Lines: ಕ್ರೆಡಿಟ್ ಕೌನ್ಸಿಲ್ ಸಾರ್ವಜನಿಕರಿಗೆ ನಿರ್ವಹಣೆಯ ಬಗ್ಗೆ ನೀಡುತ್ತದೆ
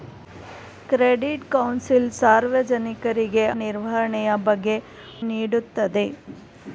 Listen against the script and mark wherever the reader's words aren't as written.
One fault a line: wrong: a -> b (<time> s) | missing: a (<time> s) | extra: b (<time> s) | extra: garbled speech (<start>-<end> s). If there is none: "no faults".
no faults